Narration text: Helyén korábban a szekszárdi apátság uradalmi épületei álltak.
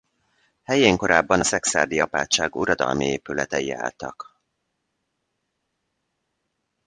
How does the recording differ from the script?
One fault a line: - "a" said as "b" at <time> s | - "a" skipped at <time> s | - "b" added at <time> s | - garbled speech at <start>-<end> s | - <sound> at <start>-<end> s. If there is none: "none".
none